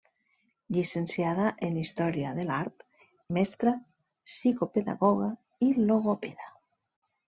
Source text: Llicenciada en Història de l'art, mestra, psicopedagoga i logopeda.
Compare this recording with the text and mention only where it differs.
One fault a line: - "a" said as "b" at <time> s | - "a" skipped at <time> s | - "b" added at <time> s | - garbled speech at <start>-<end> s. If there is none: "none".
none